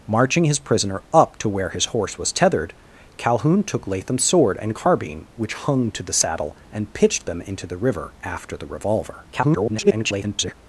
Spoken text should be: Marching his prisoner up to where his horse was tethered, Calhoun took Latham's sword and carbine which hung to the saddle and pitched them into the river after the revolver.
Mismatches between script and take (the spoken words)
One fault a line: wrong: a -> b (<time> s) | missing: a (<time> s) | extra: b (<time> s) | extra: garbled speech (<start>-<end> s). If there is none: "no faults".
extra: garbled speech (9.3-10.5 s)